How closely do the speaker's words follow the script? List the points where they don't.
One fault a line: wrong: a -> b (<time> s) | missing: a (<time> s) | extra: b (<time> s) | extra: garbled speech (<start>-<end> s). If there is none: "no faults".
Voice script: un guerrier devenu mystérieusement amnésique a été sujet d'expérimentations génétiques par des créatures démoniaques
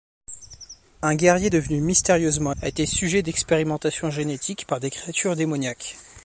missing: amnésique (2.5 s)